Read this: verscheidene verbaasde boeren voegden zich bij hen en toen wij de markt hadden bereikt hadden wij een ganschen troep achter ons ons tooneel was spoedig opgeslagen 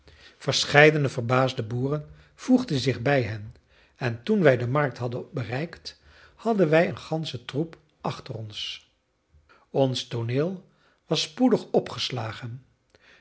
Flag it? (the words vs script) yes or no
no